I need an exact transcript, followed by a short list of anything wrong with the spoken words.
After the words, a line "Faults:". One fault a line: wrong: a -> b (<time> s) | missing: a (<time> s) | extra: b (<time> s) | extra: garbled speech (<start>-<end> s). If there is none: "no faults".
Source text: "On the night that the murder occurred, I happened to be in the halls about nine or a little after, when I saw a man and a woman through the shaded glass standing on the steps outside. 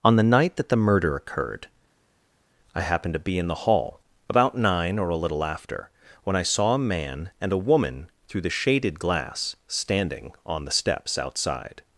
"On the night that the murder occurred, I happened to be in the hall about nine or a little after, when I saw a man and a woman through the shaded glass standing on the steps outside.
Faults:
wrong: halls -> hall (3.5 s)